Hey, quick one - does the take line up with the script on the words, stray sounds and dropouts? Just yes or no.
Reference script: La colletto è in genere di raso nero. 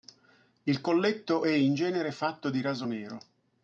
no